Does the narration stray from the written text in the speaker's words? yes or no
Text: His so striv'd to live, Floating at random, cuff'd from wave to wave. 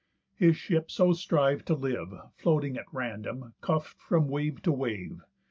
yes